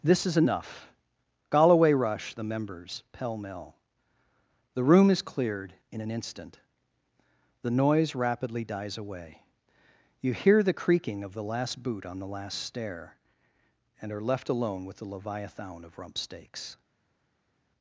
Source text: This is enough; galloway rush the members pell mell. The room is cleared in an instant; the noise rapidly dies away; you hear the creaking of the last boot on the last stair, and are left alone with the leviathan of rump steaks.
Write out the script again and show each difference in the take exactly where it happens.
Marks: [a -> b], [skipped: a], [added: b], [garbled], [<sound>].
This is enough; galloway rush the members pell mell. The room is cleared in an instant; the noise rapidly dies away; you hear the creaking of the last boot on the last stair, and are left alone with the leviathan of rump steaks.